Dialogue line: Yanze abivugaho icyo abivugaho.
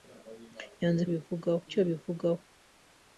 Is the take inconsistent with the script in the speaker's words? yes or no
no